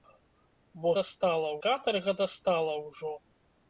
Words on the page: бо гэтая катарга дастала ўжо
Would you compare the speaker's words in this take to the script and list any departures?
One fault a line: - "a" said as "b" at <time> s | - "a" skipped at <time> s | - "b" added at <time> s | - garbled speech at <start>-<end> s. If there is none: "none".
- "гэтая" said as "дастала" at 1.0 s